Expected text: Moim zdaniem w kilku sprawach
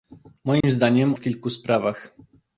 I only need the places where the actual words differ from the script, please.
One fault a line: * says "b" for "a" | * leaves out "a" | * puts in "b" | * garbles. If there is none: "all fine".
all fine